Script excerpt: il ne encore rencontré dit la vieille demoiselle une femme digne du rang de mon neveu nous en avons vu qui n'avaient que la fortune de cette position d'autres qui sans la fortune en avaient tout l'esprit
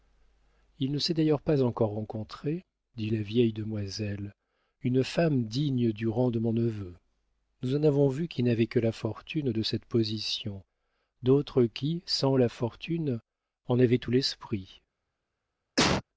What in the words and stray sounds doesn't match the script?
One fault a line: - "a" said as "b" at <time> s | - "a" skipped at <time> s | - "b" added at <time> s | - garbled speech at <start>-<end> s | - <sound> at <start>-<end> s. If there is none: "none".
- "s'est d'ailleurs pas" added at 1.0 s
- cough at 15.8-16.0 s